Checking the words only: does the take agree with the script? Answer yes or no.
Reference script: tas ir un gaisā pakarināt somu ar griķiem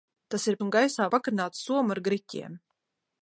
yes